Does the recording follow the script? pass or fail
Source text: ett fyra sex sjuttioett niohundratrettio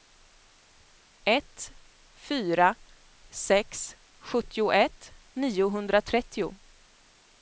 pass